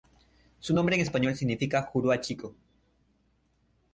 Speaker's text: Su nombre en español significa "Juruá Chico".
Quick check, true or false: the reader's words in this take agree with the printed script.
true